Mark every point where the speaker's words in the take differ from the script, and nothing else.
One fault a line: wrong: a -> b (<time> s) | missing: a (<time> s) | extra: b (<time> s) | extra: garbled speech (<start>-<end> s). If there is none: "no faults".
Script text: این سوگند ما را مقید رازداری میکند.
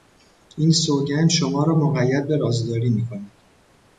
wrong: ما -> شما (1.3 s)
extra: به (2.3 s)